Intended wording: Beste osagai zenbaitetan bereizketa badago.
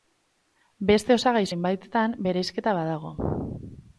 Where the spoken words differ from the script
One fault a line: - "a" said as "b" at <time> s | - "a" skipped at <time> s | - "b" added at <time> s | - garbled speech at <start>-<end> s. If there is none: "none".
none